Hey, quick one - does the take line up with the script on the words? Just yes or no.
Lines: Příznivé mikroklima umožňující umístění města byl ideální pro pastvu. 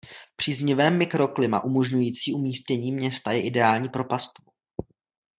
no